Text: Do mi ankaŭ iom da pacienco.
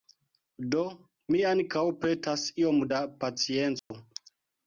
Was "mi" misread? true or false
false